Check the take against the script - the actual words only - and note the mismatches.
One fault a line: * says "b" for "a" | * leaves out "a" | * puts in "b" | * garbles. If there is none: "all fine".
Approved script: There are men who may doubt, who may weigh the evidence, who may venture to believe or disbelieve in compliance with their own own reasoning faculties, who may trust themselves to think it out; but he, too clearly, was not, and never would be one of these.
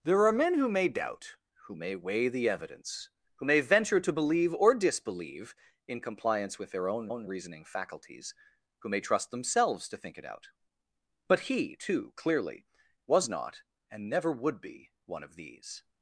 all fine